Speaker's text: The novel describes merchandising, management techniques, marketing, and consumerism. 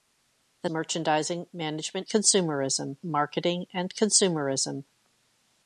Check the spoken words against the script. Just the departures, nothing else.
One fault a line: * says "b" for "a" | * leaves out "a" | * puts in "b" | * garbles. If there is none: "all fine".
* leaves out "novel describes"
* says "consumerism" for "techniques"